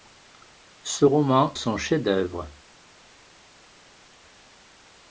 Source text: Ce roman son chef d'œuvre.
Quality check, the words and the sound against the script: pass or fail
pass